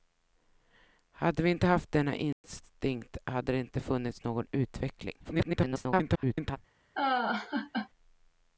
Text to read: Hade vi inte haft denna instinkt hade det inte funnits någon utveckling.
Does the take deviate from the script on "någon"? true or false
false